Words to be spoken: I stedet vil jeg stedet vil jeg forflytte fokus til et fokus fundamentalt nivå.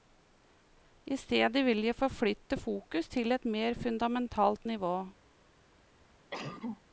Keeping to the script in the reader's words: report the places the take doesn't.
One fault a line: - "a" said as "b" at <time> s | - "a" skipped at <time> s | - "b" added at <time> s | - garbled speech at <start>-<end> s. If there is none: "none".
- "stedet vil jeg" skipped at 1.9 s
- "fokus" said as "mer" at 3.4 s